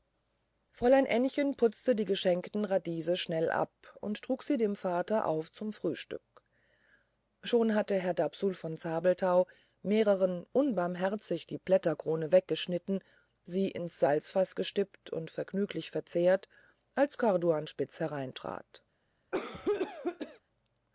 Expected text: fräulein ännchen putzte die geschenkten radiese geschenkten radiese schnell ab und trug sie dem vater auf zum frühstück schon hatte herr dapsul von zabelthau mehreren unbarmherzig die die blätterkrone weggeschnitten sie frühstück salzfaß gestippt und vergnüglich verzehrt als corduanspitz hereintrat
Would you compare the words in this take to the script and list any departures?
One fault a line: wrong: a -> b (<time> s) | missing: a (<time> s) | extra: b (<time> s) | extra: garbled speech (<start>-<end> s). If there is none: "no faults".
missing: geschenkten radiese (3.2 s)
missing: die (11.6 s)
wrong: frühstück -> ins (13.7 s)